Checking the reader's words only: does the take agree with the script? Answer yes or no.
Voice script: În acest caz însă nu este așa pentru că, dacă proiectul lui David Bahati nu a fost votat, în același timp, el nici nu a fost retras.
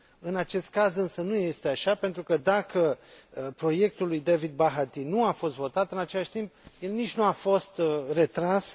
yes